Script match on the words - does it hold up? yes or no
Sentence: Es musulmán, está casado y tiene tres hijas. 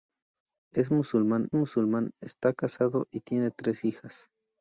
no